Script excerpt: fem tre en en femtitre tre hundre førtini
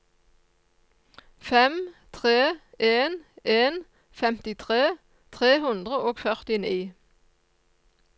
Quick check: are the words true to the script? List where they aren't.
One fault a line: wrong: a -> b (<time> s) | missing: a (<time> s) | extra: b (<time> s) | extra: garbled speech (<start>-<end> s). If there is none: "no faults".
extra: og (6.0 s)